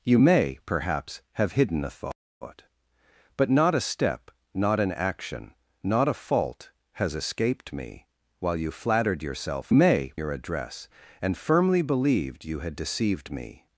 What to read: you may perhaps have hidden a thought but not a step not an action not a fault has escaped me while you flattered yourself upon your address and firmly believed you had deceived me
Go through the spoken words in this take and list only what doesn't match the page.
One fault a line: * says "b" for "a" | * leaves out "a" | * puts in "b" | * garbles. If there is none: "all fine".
* says "may" for "upon"